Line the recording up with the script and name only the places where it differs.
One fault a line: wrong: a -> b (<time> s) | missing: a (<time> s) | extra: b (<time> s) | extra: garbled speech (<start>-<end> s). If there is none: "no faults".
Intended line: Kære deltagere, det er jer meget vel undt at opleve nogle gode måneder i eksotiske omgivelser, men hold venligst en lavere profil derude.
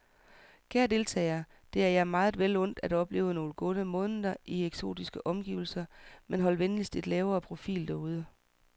no faults